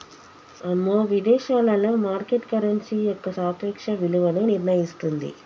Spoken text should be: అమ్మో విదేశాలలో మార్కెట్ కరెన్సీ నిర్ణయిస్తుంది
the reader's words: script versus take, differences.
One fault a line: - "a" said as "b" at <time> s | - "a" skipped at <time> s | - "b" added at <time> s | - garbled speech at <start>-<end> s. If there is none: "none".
- "యొక్క సాపేక్ష విలువను" added at 3.0 s